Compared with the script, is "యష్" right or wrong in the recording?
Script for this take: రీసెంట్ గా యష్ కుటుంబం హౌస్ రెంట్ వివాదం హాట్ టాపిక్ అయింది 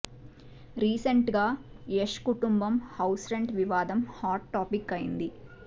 right